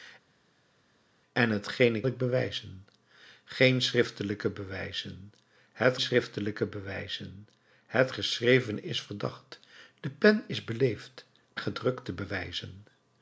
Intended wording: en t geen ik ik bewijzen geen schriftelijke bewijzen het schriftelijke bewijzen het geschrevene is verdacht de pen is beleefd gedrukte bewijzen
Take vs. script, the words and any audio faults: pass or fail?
pass